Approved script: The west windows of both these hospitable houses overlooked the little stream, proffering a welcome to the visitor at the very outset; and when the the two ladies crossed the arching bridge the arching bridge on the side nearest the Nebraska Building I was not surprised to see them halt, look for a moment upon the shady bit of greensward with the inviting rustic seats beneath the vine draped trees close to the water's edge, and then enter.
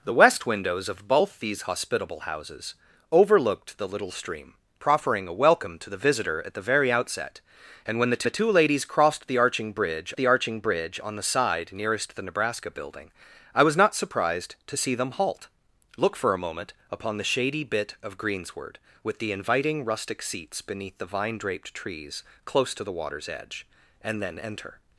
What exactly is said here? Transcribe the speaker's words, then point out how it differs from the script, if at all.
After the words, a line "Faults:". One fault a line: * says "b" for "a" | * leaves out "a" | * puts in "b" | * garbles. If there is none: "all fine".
The west windows of both these hospitable houses overlooked the little stream, proffering a welcome to the visitor at the very outset; and when the the two ladies crossed the arching bridge the arching bridge on the side nearest the Nebraska Building I was not surprised to see them halt, look for a moment upon the shady bit of greensward with the inviting rustic seats beneath the vine draped trees close to the water's edge, and then enter.
Faults:
all fine